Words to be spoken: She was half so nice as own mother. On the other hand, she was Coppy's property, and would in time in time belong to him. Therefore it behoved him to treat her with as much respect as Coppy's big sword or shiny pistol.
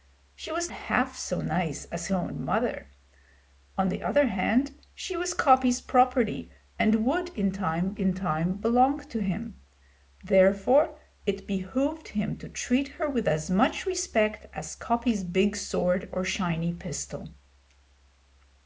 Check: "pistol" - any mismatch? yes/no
no